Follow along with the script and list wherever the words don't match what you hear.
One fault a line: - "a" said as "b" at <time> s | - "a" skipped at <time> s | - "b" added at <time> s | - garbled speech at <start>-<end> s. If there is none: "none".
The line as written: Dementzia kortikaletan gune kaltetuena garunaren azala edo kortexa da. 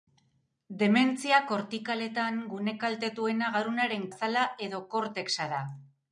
none